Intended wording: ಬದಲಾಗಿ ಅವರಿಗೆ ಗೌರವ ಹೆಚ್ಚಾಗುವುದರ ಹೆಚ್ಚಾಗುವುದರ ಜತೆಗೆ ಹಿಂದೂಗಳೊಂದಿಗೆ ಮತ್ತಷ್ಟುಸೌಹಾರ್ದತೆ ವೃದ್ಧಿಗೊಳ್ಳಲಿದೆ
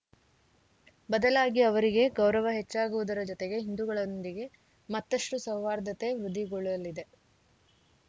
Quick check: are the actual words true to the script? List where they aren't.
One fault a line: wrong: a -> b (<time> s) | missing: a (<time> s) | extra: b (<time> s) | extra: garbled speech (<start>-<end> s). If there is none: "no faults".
missing: ಹೆಚ್ಚಾಗುವುದರ (3.2 s)